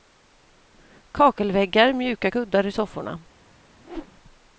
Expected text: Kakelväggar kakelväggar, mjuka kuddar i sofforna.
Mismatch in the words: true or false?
true